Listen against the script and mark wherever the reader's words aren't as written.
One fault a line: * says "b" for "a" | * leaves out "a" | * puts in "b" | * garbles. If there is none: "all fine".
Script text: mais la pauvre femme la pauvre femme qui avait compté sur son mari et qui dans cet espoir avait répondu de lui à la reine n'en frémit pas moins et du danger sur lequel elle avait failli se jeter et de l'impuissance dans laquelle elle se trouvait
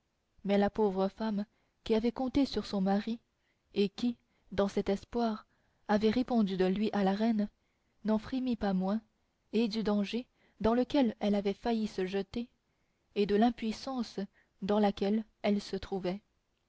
* leaves out "la pauvre femme"
* says "dans" for "sur"